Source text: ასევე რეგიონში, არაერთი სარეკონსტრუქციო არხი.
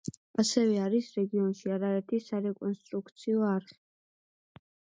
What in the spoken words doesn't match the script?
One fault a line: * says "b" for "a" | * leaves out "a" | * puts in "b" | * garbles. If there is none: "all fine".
* puts in "არის"